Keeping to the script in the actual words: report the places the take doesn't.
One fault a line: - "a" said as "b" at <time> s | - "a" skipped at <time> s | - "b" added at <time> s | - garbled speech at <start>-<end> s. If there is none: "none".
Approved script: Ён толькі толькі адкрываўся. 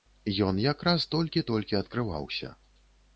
- "якраз" added at 0.6 s